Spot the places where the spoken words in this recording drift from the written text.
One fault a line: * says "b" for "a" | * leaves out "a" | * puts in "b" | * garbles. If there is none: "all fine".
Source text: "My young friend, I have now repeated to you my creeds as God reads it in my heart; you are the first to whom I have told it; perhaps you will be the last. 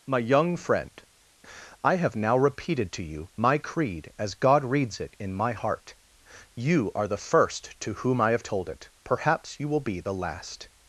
* says "creed" for "creeds"